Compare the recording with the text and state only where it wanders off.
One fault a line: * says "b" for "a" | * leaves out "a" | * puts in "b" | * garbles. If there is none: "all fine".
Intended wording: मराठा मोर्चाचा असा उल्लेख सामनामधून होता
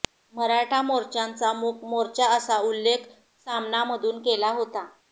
* puts in "मूक मोर्चा"
* puts in "केला"